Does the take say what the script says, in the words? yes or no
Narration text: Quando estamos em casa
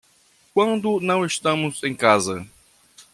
no